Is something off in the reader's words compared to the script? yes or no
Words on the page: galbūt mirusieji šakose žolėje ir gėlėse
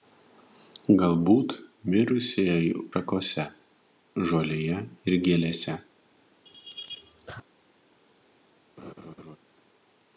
no